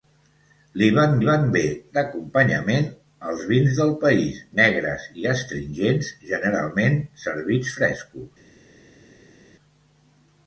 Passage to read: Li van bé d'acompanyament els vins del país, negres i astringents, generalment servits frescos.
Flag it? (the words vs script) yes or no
yes